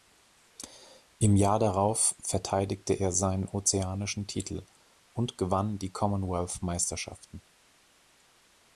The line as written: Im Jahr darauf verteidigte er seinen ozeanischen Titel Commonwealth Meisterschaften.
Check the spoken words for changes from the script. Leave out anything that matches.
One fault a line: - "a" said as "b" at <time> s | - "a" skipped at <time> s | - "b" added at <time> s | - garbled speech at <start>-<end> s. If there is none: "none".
- "und gewann die" added at 5.1 s